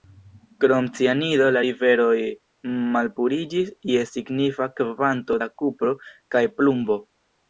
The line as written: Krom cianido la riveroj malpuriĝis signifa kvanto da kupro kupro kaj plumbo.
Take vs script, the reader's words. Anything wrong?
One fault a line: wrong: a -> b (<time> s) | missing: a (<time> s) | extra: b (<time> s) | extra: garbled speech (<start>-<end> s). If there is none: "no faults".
extra: je (3.9 s)
missing: kupro (5.9 s)